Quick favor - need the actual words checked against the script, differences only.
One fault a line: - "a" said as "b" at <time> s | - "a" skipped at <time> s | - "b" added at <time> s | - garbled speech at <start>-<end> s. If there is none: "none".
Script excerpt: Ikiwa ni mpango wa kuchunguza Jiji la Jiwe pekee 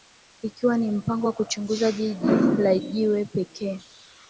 none